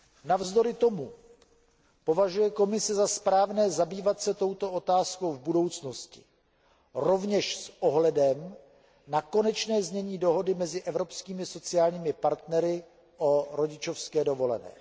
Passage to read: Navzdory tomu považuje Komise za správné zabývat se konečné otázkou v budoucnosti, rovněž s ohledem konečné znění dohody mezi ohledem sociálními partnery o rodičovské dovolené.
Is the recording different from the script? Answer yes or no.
yes